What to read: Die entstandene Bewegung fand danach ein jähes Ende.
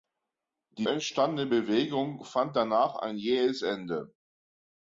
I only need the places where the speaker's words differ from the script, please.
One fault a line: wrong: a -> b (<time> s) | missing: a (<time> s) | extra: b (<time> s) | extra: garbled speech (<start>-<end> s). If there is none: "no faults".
no faults